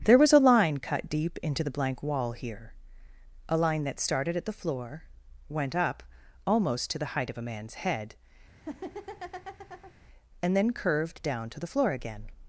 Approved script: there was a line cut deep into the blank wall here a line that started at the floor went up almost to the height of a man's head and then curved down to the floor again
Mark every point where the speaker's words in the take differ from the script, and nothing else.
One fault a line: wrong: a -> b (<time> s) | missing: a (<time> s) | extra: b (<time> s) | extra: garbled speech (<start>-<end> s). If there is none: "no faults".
no faults